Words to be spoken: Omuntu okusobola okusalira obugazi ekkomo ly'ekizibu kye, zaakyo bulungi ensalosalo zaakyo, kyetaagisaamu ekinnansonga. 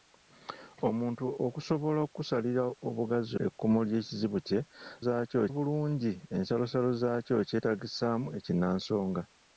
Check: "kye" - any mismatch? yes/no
no